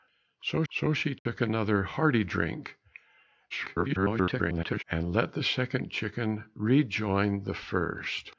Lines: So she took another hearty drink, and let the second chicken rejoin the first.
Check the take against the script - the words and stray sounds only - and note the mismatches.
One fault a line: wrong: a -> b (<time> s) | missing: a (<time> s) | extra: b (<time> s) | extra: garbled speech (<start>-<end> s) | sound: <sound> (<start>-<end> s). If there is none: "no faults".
extra: so (0.7 s)
sound: dropout (1.2-1.3 s)
extra: garbled speech (3.5-4.8 s)